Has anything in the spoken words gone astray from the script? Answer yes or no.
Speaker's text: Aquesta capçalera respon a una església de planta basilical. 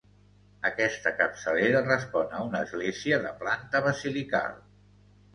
no